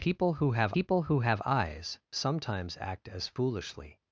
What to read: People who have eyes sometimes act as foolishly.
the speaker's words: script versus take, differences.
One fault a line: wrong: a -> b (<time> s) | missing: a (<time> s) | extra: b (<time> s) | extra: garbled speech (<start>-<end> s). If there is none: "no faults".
extra: people who have (0.7 s)